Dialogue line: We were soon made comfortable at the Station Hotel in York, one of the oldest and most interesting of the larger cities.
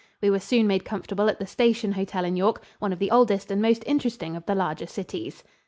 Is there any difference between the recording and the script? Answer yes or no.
no